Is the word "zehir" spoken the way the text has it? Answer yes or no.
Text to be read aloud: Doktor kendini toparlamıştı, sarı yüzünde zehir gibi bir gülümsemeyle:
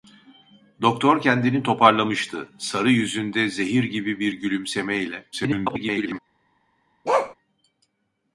yes